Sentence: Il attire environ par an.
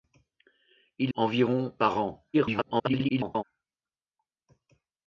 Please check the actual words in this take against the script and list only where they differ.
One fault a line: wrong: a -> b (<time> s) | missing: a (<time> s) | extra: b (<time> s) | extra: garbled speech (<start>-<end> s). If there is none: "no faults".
missing: attire (1.1 s)
extra: garbled speech (2.3-3.4 s)